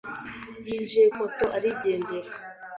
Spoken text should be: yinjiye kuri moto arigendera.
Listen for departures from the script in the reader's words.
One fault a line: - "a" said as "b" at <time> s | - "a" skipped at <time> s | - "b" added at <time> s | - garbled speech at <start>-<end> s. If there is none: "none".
- "kuri" skipped at 1.1 s